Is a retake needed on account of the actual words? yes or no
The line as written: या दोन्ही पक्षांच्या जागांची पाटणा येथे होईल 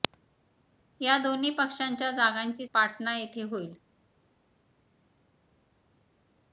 no